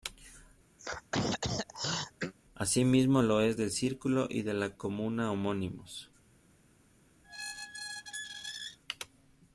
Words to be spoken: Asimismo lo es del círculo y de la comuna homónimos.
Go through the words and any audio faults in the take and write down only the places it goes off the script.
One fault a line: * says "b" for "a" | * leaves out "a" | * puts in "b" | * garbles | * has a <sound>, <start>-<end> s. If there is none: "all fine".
* has a throat clearing, 0.8-2.3 s
* has a squeak, 7.2-8.8 s